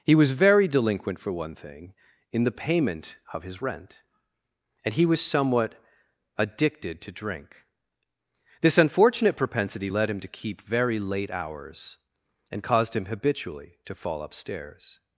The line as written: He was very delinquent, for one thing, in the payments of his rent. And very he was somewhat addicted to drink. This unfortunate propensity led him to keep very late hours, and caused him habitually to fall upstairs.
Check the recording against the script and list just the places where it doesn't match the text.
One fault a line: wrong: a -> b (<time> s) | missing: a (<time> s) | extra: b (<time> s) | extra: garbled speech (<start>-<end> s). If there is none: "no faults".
wrong: payments -> payment (2.6 s)
missing: very (4.9 s)